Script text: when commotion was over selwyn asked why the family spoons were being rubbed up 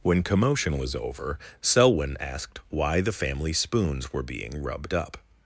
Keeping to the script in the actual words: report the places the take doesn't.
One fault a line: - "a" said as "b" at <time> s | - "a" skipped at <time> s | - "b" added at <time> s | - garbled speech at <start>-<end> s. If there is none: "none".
none